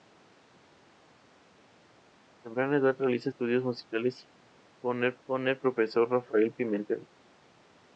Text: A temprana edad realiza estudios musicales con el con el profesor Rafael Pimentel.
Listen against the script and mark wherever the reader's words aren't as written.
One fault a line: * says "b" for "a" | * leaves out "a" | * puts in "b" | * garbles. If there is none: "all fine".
all fine